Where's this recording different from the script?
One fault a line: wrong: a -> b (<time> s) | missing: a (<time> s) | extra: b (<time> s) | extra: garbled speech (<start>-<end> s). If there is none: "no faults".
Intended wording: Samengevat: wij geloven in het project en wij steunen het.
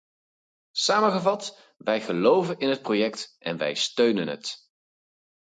no faults